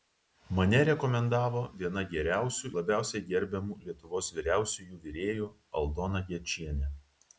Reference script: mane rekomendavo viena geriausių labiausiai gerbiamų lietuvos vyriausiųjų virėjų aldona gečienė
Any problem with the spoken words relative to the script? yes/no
no